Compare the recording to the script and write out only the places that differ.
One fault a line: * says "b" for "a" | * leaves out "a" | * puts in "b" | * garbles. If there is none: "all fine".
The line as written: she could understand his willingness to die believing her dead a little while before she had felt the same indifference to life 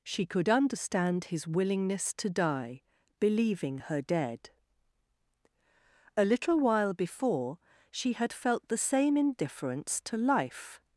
all fine